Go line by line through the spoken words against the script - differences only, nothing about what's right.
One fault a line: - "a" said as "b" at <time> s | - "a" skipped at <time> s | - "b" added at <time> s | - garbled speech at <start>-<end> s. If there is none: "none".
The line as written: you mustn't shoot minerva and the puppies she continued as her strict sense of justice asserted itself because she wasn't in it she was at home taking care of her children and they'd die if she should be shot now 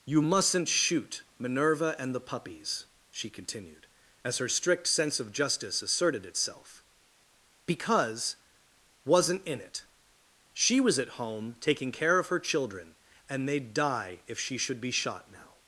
- "she" skipped at 8.4 s